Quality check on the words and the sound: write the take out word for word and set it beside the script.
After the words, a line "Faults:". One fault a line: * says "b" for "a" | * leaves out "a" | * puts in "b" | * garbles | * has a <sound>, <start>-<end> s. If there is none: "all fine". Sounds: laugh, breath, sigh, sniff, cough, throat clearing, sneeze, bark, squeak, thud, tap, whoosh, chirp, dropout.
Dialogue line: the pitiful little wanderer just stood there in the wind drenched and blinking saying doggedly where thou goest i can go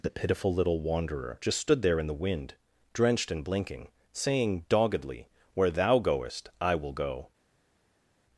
the pitiful little wanderer just stood there in the wind drenched and blinking saying doggedly where thou goest i will go
Faults:
* says "will" for "can"